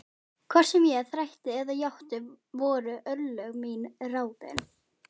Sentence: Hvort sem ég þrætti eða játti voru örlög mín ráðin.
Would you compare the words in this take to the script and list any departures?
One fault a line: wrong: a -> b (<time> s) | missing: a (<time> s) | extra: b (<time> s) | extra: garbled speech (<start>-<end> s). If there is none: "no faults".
no faults